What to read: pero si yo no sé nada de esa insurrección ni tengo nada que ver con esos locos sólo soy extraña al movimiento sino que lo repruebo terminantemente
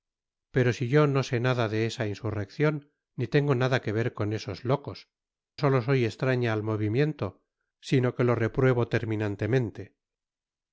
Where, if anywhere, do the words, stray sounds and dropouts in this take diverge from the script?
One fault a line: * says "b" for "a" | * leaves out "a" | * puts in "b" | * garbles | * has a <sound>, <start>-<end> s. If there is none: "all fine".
all fine